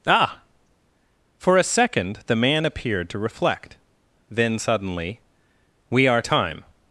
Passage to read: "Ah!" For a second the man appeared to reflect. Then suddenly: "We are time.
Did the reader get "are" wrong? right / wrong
right